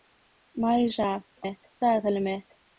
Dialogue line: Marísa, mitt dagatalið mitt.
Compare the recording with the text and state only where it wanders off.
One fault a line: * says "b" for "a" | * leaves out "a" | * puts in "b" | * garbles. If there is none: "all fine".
all fine